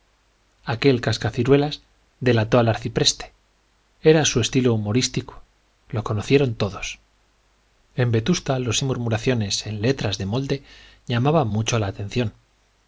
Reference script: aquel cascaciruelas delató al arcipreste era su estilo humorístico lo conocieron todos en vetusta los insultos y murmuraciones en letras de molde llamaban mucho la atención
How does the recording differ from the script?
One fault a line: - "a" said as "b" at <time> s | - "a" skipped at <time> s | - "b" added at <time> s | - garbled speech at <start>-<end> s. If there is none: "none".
- "insultos" skipped at 8.8 s